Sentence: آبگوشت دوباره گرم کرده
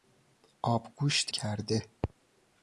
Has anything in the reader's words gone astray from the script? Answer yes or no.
yes